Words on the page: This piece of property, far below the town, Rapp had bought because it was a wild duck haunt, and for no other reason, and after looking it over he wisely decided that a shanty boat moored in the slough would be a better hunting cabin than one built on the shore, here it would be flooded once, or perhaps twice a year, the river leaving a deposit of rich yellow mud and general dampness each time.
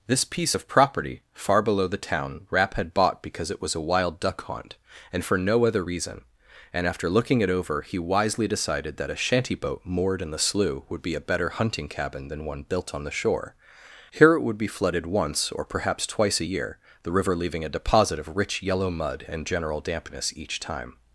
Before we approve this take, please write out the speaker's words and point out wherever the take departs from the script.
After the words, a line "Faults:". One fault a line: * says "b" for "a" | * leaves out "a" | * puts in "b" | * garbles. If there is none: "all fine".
This piece of property, far below the town, Rapp had bought because it was a wild duck haunt, and for no other reason, and after looking it over he wisely decided that a shanty boat moored in the slough would be a better hunting cabin than one built on the shore, here it would be flooded once, or perhaps twice a year, the river leaving a deposit of rich yellow mud and general dampness each time.
Faults:
all fine